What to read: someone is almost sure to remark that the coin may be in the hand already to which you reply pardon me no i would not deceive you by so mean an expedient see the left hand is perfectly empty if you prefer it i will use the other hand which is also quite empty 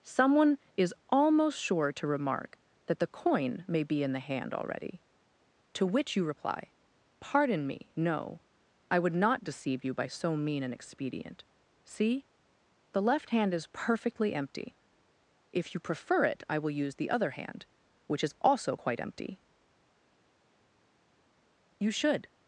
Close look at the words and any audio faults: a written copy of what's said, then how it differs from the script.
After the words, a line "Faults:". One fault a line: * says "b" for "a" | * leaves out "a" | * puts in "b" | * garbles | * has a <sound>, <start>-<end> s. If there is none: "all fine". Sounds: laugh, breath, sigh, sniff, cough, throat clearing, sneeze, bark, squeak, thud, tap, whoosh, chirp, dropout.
someone is almost sure to remark that the coin may be in the hand already to which you reply pardon me no i would not deceive you by so mean an expedient see the left hand is perfectly empty if you prefer it i will use the other hand which is also quite empty you should
Faults:
* puts in "you should"